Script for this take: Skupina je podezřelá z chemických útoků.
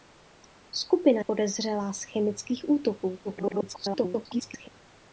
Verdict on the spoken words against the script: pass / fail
fail